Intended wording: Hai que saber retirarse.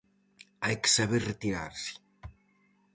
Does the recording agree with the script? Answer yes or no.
yes